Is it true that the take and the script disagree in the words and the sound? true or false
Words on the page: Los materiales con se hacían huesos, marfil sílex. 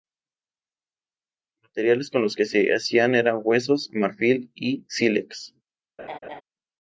true